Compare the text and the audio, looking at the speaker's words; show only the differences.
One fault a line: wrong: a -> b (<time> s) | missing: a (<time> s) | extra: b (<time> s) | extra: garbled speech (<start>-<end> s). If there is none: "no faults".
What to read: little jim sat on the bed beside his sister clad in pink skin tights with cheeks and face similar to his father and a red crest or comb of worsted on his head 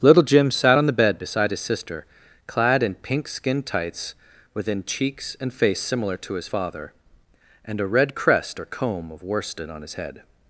wrong: with -> within (4.5 s)